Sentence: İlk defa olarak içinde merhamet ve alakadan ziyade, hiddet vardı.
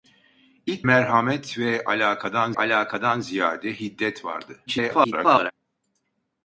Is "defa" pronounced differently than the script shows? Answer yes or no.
yes